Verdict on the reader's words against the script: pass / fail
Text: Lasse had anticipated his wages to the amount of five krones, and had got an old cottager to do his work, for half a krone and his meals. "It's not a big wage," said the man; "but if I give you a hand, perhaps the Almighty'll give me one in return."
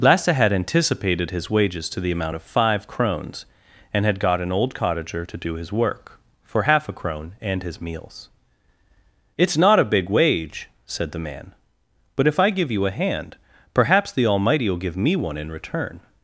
pass